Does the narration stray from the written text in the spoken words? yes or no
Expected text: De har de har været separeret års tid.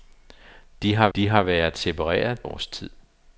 no